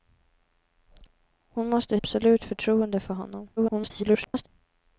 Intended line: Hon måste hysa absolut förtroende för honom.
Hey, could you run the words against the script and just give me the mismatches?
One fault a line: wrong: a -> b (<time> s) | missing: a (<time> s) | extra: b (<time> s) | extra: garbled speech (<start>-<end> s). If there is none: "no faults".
missing: hysa (2.0 s)
extra: garbled speech (3.6-4.5 s)